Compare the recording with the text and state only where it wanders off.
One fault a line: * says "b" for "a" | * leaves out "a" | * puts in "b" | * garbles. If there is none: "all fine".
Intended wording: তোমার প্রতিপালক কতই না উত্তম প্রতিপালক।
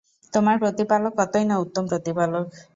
all fine